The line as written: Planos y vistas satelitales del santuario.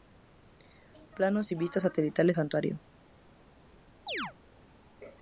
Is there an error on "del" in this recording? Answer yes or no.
yes